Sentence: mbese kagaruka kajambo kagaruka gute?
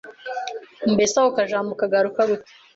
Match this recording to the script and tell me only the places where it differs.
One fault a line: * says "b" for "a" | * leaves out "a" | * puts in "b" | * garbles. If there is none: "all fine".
* says "ako" for "kagaruka"